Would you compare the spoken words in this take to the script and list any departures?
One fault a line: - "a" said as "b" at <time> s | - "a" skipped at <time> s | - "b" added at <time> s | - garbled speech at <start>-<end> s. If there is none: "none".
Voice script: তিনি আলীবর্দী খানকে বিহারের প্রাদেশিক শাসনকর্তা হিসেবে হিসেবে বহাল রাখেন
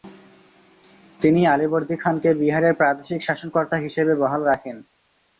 - "হিসেবে" skipped at 4.1 s